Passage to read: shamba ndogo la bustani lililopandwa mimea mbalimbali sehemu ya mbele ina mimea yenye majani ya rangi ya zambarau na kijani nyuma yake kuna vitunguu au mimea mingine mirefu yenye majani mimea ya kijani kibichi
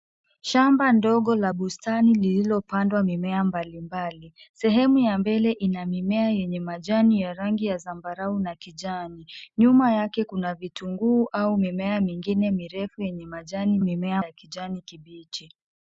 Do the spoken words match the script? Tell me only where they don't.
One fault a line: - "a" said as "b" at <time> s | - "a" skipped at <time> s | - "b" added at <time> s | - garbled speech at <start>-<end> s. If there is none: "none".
none